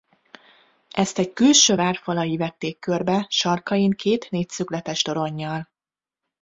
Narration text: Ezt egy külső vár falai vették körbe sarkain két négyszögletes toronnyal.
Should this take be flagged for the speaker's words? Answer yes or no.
no